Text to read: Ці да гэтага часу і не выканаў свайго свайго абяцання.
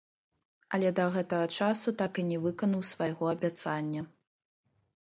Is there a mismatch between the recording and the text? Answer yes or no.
yes